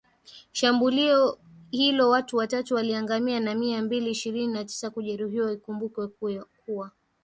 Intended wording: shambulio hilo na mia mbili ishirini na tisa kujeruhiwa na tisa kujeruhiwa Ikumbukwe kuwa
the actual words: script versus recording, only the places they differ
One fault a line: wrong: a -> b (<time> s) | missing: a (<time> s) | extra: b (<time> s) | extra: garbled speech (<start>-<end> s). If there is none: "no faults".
extra: watu watatu waliangamia (2.1 s)
missing: na tisa kujeruhiwa (5.5 s)